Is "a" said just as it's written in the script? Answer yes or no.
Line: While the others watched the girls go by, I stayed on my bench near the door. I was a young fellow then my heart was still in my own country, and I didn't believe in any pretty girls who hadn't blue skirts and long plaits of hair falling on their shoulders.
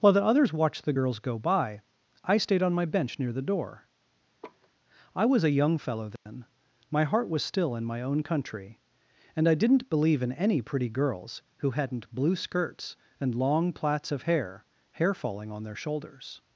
yes